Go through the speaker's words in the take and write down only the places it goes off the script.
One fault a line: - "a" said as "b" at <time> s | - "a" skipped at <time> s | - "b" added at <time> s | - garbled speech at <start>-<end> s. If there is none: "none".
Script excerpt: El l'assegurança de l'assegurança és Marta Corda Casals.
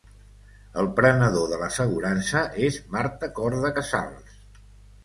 - "l'assegurança" said as "prenedor" at 1.0 s